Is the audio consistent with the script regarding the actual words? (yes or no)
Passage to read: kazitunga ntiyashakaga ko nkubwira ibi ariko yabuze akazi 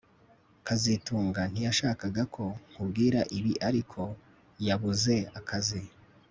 yes